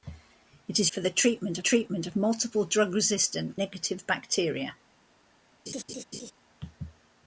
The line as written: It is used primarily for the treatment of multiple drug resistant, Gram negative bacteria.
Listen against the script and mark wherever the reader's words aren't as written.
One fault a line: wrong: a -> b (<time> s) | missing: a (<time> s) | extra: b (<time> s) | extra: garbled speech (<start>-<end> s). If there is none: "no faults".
missing: used primarily (0.9 s)
extra: treatment (1.6 s)
missing: Gram (3.6 s)